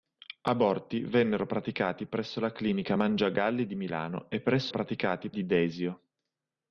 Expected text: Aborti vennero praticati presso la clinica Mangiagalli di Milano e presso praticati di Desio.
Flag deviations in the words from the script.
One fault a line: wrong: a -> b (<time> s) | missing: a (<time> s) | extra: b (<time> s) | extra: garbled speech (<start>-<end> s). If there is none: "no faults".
no faults